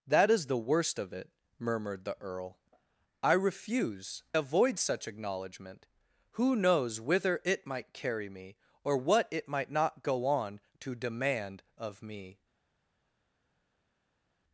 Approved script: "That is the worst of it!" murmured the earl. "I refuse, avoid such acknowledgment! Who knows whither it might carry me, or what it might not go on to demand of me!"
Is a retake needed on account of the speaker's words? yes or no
no